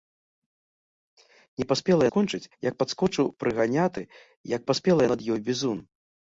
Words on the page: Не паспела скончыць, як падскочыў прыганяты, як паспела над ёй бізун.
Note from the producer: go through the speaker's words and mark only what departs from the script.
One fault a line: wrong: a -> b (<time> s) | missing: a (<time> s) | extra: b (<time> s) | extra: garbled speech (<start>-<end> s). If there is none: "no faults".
no faults